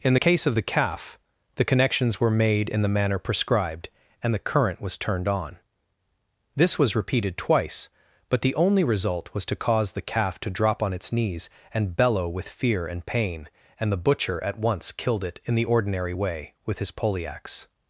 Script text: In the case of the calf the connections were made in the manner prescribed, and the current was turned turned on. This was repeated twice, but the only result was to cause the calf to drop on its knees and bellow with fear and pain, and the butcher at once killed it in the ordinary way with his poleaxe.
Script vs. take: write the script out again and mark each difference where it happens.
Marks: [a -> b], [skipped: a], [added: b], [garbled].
In the case of the calf the connections were made in the manner prescribed, and the current was turned [skipped: turned] on. This was repeated twice, but the only result was to cause the calf to drop on its knees and bellow with fear and pain, and the butcher at once killed it in the ordinary way with his poleaxe.